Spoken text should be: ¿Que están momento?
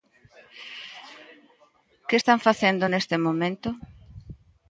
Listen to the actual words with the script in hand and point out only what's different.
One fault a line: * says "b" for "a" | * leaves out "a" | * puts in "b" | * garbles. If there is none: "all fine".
* puts in "facendo neste"